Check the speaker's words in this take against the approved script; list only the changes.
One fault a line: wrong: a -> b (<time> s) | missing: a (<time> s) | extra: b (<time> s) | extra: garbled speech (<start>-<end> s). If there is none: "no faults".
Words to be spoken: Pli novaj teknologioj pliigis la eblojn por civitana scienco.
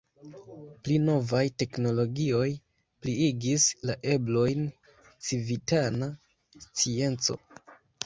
missing: por (4.6 s)